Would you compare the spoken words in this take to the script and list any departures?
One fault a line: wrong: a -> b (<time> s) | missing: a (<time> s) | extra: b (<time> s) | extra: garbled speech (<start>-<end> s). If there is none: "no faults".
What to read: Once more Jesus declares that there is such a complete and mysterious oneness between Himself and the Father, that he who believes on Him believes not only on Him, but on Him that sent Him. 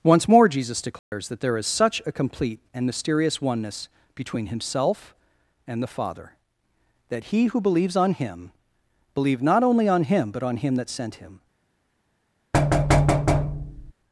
wrong: believes -> believe (9.1 s)